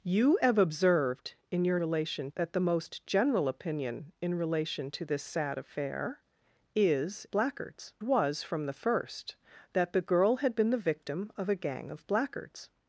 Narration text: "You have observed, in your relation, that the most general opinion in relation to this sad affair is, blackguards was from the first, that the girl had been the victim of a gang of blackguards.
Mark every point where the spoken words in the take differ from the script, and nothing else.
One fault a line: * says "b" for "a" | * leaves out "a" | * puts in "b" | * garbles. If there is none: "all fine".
all fine